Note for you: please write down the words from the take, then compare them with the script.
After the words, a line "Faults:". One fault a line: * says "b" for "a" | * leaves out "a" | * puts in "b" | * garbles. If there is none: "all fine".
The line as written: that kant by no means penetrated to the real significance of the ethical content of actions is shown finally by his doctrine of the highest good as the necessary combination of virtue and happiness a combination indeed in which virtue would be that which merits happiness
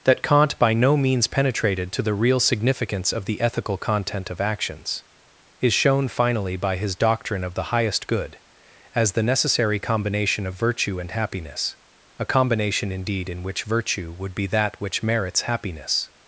that kant by no means penetrated to the real significance of the ethical content of actions is shown finally by his doctrine of the highest good as the necessary combination of virtue and happiness a combination indeed in which virtue would be that which merits happiness
Faults:
all fine